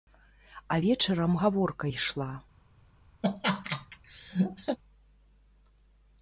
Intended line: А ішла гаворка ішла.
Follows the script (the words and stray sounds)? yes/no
no